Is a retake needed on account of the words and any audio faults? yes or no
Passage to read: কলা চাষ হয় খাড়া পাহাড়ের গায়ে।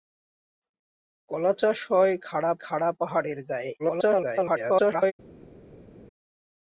yes